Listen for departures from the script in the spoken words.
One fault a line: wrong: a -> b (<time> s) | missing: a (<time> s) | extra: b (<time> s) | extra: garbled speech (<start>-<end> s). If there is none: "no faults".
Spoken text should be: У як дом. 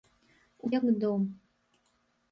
no faults